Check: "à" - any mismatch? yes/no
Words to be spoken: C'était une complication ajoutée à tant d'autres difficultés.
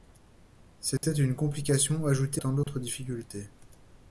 yes